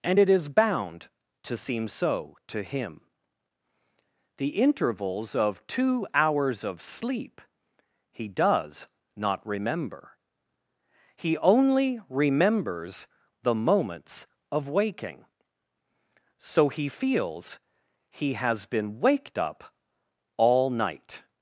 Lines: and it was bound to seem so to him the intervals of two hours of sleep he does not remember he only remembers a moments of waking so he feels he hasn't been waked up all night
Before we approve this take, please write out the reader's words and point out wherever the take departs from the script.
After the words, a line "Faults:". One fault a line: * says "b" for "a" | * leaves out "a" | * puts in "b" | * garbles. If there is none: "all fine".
and it is bound to seem so to him the intervals of two hours of sleep he does not remember he only remembers the moments of waking so he feels he has been waked up all night
Faults:
* says "is" for "was"
* says "the" for "a"
* says "has" for "hasn't"